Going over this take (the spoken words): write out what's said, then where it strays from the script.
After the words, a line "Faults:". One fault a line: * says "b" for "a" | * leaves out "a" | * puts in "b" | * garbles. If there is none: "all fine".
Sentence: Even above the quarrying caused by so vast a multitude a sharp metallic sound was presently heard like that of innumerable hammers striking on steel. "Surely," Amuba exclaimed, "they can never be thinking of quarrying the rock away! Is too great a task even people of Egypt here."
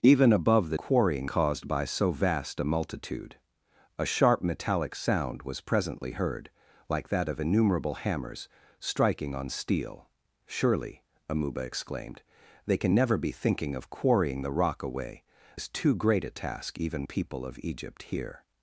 Even above the quarrying caused by so vast a multitude a sharp metallic sound was presently heard like that of innumerable hammers striking on steel. "Surely," Amuba exclaimed, "they can never be thinking of quarrying the rock away! Is too great a task even people of Egypt here."
Faults:
all fine